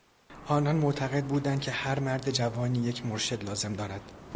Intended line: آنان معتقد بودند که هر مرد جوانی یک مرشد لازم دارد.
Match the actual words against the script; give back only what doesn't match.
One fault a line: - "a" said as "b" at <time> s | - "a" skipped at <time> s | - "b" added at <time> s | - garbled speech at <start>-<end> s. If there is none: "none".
none